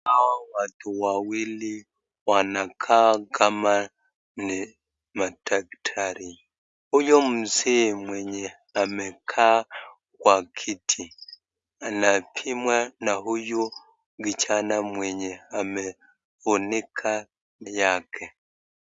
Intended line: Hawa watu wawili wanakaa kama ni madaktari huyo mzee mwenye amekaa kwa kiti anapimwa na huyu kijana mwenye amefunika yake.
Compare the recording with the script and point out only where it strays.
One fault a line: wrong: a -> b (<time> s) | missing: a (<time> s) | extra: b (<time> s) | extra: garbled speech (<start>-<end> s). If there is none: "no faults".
no faults